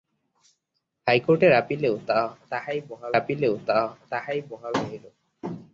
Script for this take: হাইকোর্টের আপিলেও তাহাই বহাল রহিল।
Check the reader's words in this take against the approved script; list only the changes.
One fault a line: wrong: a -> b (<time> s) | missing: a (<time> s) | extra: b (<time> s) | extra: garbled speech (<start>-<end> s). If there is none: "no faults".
extra: আপিলেও তাহাই বহাল (3.1 s)